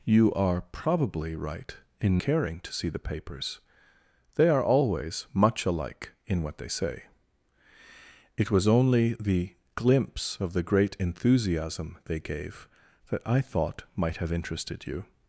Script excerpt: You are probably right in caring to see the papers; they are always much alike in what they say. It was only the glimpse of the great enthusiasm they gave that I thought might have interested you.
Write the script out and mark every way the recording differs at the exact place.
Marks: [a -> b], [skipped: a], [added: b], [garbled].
You are probably right in caring to see the papers; they are always much alike in what they say. It was only the glimpse of the great enthusiasm they gave that I thought might have interested you.